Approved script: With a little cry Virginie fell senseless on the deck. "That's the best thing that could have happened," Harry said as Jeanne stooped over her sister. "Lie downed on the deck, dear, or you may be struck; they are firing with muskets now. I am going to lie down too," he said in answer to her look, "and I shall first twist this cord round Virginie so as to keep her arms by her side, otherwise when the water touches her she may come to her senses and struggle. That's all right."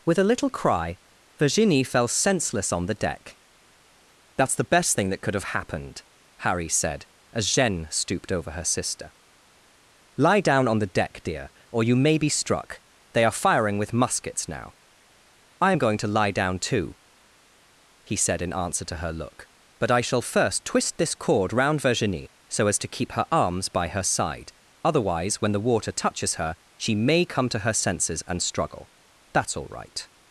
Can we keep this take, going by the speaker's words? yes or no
no